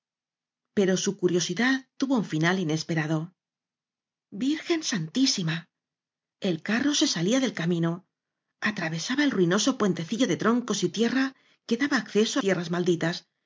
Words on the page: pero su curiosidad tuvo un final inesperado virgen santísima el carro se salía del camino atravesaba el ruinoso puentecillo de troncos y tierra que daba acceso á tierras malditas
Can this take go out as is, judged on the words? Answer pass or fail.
pass